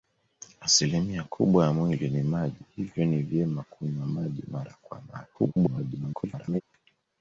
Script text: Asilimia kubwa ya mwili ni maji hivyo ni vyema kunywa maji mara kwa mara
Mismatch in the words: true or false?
true